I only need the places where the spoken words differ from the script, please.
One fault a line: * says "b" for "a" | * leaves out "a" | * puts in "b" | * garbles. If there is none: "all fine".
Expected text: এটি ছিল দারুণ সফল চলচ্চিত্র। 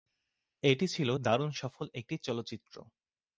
* puts in "একটি"